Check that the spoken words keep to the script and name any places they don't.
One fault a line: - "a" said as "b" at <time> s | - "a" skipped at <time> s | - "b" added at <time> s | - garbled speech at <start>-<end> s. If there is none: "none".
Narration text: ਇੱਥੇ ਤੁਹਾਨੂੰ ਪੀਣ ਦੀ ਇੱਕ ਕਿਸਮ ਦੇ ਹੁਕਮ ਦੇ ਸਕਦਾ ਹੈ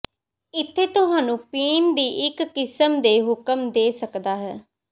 none